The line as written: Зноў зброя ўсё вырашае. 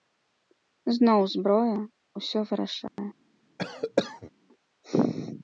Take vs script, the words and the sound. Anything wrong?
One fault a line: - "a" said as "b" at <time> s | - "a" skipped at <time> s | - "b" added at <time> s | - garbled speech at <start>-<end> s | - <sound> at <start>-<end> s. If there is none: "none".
- dropout at 2.9-3.0 s
- cough at 3.6-4.3 s